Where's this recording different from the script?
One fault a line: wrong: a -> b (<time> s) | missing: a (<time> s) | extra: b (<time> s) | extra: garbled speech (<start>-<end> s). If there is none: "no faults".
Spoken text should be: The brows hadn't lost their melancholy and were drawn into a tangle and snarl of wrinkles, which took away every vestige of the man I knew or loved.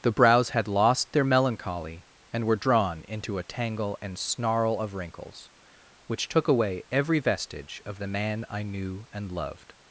wrong: hadn't -> had (0.5 s)
wrong: or -> and (9.1 s)